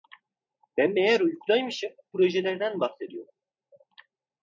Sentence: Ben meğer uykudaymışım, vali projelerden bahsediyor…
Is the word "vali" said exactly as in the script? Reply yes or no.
no